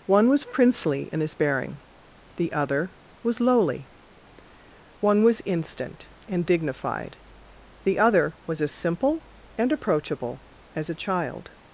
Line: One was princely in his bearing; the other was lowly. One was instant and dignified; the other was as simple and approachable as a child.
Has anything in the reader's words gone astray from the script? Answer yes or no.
no